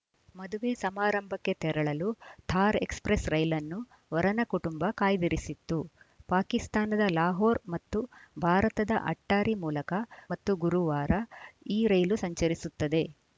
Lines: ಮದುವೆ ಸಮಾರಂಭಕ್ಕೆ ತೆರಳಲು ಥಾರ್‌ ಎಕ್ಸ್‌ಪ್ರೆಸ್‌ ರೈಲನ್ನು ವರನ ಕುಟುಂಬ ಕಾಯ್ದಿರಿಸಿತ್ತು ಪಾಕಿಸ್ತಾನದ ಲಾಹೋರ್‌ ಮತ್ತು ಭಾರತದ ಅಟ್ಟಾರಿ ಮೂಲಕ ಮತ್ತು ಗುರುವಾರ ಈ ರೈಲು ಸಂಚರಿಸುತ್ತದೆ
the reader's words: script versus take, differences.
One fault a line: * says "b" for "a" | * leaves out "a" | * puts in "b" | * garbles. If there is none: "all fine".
all fine